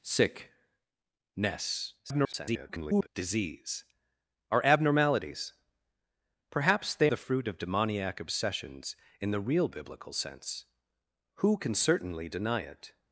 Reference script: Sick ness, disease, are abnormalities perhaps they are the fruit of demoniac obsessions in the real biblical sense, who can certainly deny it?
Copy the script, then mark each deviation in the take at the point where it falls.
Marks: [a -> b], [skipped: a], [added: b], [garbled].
Sick ness, [garbled] disease, are abnormalities perhaps they [skipped: are] the fruit of demoniac obsessions in the real biblical sense, who can certainly deny it?